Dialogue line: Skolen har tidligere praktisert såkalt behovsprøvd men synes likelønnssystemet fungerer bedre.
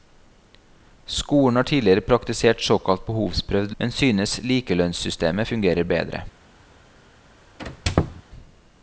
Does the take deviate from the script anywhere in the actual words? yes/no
no